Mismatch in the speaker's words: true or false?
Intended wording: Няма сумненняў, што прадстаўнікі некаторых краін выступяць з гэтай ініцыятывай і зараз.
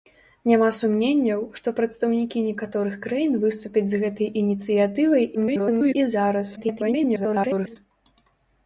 true